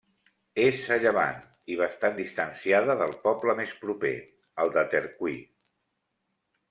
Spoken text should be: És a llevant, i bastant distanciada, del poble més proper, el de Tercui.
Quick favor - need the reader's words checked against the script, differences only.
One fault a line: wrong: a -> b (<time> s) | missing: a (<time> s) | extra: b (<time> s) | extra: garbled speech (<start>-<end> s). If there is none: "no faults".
no faults